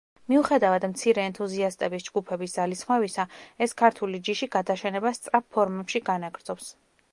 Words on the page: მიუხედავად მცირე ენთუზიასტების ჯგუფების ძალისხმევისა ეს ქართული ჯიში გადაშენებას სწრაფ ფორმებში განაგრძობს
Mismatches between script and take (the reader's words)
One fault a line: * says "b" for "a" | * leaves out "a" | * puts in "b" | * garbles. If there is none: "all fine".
all fine